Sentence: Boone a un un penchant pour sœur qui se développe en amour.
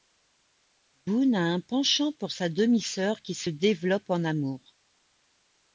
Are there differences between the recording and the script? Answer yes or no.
yes